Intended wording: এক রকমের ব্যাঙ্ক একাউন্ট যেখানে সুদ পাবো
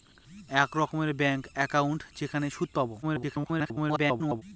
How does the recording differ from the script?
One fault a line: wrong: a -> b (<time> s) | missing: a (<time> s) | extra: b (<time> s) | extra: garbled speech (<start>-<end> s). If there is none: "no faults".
extra: garbled speech (3.0-4.4 s)